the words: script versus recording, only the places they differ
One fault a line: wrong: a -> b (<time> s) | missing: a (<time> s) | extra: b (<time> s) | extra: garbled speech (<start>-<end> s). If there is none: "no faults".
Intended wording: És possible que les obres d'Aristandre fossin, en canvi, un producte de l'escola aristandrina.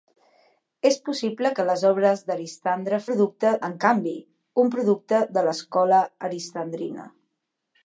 wrong: fossin -> producte (3.1 s)